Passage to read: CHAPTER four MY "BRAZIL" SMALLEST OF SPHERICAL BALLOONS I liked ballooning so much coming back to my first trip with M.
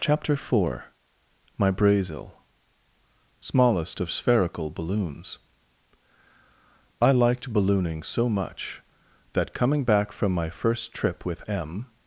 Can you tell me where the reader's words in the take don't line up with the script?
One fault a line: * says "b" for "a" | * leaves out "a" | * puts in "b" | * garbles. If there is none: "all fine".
* puts in "that"
* says "from" for "to"